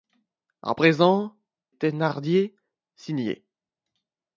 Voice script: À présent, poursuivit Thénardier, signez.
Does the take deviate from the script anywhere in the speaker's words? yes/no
yes